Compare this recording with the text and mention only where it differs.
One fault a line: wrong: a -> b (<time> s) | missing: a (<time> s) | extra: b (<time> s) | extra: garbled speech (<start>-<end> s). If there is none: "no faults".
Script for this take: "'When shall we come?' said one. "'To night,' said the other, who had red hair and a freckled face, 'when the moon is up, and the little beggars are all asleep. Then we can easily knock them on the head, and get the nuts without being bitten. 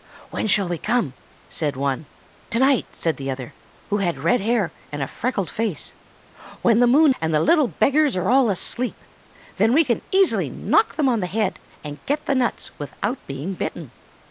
missing: is up (7.1 s)